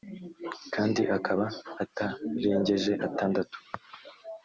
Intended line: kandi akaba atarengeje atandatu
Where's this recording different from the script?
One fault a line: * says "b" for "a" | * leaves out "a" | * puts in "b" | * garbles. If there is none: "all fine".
all fine